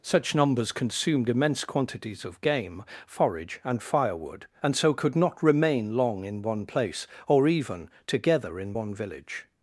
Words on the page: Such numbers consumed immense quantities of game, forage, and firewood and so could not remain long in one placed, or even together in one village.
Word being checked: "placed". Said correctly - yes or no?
no